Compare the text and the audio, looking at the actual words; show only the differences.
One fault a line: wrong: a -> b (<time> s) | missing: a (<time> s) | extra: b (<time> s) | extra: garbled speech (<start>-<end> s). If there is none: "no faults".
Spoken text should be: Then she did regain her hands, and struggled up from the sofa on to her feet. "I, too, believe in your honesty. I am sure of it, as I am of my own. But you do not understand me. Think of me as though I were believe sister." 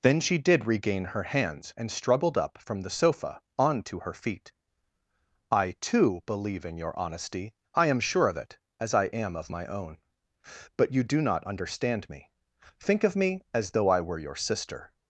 wrong: believe -> your (14.2 s)